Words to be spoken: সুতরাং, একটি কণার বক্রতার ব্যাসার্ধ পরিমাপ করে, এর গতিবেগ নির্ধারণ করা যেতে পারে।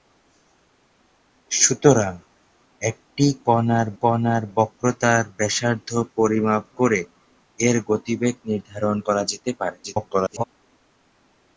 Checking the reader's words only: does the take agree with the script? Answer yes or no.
no